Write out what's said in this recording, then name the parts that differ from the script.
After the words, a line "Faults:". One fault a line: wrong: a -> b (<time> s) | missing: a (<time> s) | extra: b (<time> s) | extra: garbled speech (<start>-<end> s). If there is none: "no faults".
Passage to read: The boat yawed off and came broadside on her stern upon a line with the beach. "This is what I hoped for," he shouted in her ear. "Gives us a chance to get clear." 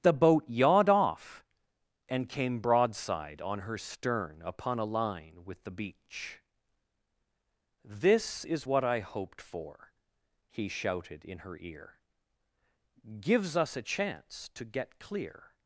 The boat yawed off and came broadside on her stern upon a line with the beach. "This is what I hoped for," he shouted in her ear. "Gives us a chance to get clear."
Faults:
no faults